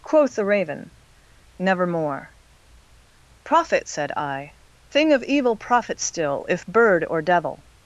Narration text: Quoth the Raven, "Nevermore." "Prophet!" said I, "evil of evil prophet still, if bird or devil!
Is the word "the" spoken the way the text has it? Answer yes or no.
yes